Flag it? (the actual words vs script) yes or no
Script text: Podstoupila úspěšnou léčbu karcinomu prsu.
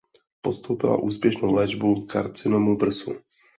no